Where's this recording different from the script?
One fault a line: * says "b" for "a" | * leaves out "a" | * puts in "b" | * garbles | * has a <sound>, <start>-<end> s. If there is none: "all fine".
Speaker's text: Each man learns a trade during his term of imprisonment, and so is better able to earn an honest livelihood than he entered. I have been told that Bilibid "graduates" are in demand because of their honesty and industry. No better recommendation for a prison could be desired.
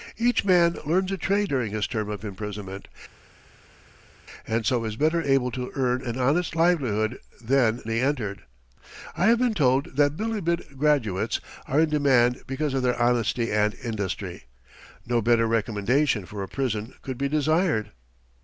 all fine